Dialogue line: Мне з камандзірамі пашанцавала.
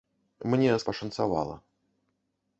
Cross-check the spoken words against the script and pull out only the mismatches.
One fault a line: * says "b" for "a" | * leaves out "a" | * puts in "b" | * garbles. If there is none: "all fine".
* leaves out "камандзірамі"